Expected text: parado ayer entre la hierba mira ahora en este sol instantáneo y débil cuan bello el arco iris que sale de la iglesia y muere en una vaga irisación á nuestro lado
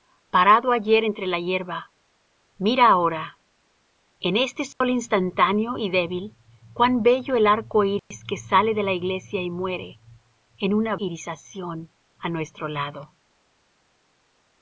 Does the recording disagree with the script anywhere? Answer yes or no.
yes